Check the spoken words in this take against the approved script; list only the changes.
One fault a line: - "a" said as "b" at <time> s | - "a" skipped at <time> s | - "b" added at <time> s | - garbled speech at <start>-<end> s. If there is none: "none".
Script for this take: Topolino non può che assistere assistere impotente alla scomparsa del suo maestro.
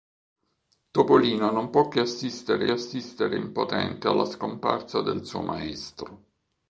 none